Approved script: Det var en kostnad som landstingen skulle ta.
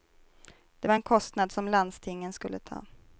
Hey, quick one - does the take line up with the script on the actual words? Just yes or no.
yes